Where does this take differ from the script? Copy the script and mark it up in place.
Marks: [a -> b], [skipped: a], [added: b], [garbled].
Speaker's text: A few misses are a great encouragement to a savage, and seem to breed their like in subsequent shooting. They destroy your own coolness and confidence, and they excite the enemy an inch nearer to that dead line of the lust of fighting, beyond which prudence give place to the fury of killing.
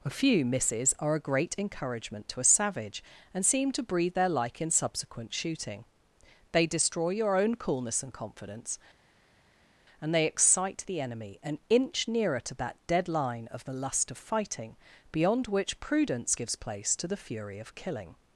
A few misses are a great encouragement to a savage, and seem to breed their like in subsequent shooting. They destroy your own coolness and confidence, and they excite the enemy an inch nearer to that dead line of the lust of fighting, beyond which prudence [give -> gives] place to the fury of killing.